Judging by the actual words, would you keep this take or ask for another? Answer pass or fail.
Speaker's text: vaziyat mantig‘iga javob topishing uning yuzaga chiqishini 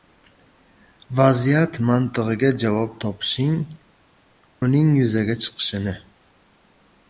pass